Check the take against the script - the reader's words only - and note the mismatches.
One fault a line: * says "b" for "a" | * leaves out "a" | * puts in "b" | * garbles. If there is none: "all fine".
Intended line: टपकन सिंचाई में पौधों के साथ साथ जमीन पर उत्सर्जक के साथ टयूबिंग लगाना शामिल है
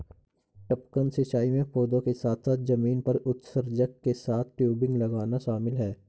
all fine